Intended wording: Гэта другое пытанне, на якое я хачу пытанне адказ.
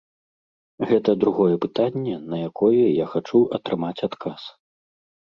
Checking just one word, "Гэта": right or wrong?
right